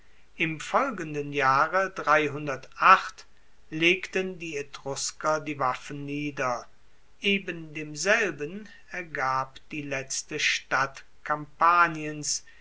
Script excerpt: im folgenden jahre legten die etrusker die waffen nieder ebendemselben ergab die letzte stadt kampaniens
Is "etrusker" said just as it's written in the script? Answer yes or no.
yes